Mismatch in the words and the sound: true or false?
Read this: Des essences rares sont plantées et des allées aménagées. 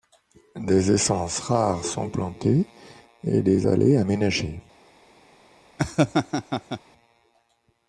true